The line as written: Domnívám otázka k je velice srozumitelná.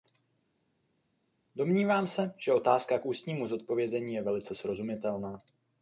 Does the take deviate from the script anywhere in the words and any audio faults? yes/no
yes